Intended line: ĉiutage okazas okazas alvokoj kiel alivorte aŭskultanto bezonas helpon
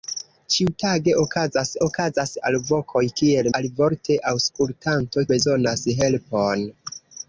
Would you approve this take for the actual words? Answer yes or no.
yes